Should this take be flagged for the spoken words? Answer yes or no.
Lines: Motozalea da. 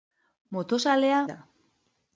no